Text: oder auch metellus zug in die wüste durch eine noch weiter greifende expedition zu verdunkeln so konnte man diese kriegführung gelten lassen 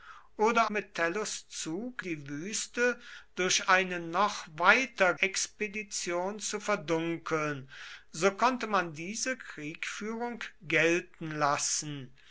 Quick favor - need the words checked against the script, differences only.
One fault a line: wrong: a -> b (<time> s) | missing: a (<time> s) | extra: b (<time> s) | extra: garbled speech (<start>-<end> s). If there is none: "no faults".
missing: auch (0.7 s)
missing: in (2.0 s)
missing: greifende (5.1 s)